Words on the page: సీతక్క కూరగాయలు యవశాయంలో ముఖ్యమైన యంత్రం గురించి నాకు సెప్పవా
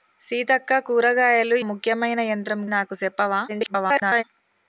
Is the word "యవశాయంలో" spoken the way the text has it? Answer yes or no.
no